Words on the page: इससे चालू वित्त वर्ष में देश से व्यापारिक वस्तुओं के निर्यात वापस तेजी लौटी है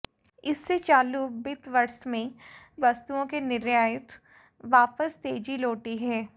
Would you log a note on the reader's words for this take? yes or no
yes